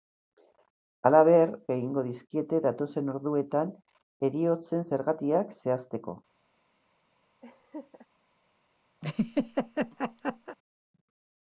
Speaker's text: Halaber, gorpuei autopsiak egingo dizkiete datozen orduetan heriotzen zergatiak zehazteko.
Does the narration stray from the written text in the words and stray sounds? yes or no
yes